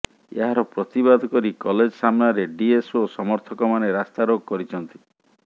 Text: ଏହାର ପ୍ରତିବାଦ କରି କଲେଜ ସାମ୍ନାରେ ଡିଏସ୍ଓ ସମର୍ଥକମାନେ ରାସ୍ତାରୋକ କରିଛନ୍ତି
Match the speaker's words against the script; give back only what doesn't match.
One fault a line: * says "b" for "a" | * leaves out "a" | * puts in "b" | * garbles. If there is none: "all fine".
all fine